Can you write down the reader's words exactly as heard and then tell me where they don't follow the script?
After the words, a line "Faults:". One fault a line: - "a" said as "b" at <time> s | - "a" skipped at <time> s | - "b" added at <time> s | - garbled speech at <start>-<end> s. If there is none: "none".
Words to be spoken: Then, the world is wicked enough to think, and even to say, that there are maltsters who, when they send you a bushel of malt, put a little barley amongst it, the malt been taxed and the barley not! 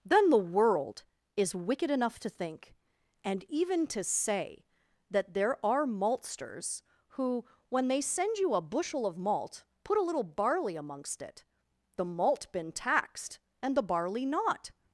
Then, the world is wicked enough to think, and even to say, that there are maltsters who, when they send you a bushel of malt, put a little barley amongst it, the malt been taxed and the barley not!
Faults:
none